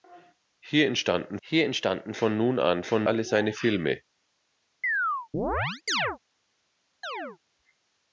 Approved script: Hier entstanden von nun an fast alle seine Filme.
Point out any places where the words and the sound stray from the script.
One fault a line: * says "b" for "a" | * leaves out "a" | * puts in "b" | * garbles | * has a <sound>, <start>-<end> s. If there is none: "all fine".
* puts in "hier entstanden"
* says "von" for "fast"
* has a chirp, 4.8-6.2 s
* has a chirp, 7.0-7.4 s